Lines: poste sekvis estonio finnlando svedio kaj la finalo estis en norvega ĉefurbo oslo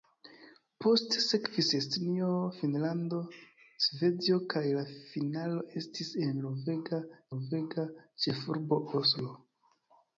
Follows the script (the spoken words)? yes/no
no